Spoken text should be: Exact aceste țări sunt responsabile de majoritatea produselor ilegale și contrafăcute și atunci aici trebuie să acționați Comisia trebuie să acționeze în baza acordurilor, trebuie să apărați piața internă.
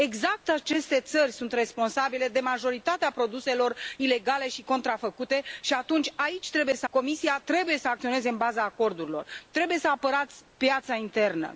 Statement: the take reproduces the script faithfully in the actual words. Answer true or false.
false